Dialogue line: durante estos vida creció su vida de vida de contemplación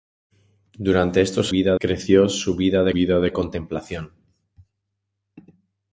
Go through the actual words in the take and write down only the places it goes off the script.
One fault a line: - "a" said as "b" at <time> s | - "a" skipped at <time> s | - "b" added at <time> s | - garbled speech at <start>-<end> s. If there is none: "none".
none